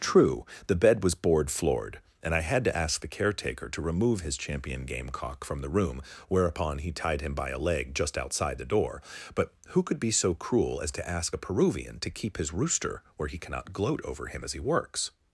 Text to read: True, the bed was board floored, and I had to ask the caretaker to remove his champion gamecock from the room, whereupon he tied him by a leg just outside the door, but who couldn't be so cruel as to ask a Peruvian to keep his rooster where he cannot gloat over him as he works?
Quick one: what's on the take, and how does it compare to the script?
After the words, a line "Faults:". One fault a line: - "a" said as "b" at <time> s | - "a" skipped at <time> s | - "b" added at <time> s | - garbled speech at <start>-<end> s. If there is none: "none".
True, the bed was board floored, and I had to ask the caretaker to remove his champion gamecock from the room, whereupon he tied him by a leg just outside the door, but who could be so cruel as to ask a Peruvian to keep his rooster where he cannot gloat over him as he works?
Faults:
- "couldn't" said as "could" at 9.8 s